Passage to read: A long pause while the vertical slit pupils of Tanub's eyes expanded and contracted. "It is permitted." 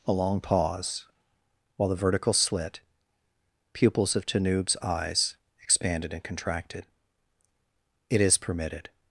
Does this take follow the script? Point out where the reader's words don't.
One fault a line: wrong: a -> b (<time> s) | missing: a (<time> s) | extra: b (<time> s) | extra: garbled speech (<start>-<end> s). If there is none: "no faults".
no faults